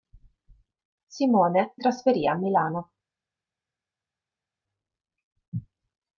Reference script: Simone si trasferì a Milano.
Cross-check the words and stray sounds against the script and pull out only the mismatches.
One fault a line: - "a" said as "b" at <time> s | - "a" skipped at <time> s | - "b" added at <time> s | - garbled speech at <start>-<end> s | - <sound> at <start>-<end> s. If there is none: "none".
- "si" skipped at 1.8 s